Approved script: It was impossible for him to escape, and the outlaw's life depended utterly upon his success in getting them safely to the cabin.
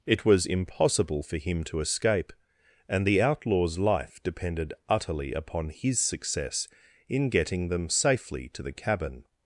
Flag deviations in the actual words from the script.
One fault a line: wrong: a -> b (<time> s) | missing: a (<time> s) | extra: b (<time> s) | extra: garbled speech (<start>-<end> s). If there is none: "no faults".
no faults